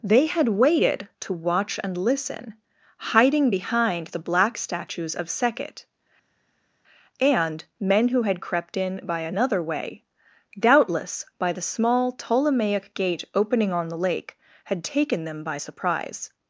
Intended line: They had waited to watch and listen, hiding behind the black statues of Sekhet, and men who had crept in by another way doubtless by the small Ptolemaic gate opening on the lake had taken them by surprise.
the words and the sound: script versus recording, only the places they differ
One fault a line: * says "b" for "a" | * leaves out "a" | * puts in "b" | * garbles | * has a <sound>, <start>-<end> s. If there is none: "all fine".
all fine